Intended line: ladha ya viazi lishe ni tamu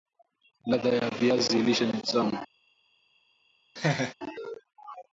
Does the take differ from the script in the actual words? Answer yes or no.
no